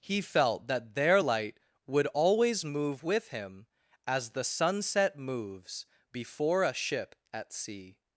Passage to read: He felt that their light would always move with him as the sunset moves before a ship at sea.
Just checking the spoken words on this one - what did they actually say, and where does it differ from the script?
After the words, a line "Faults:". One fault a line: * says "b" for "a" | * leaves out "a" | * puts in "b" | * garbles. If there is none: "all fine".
He felt that their light would always move with him as the sunset moves before a ship at sea.
Faults:
all fine